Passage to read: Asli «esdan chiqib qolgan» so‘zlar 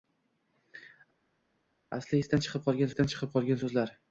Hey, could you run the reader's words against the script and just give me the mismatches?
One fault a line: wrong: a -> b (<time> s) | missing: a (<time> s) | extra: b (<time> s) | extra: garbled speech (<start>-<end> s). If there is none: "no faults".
extra: esdan chiqib qolgan (2.9 s)